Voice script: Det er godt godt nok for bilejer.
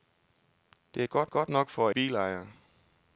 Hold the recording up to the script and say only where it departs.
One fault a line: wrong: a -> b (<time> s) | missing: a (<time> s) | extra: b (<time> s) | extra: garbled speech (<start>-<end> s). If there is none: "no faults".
no faults